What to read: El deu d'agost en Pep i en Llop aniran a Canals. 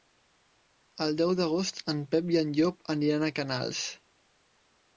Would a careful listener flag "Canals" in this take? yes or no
no